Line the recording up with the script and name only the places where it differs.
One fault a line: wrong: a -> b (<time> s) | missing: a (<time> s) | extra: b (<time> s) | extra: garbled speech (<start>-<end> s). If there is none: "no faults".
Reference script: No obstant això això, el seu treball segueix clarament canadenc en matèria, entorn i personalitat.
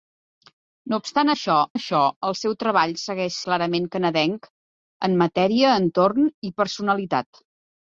no faults